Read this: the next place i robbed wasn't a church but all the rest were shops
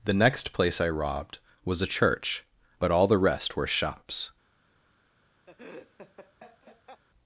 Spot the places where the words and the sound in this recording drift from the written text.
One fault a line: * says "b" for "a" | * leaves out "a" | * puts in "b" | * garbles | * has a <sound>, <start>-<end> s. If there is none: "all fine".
* says "was" for "wasn't"
* has a laugh, 5.5-7.0 s